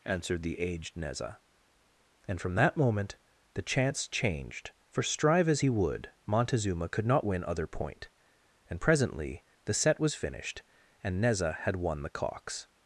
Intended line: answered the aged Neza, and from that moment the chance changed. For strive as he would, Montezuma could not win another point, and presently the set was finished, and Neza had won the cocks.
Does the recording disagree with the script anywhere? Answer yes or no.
yes